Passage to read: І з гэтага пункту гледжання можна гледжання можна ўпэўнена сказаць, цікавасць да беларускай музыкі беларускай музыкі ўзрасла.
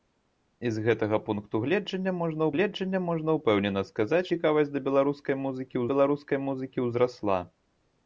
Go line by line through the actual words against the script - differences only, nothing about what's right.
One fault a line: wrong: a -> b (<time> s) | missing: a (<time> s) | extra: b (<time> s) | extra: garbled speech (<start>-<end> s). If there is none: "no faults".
no faults